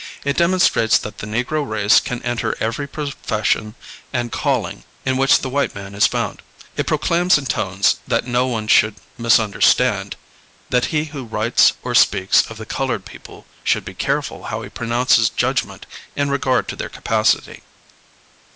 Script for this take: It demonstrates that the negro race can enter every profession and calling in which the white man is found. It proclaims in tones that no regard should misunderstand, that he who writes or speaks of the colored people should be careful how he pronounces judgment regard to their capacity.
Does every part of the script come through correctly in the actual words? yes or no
no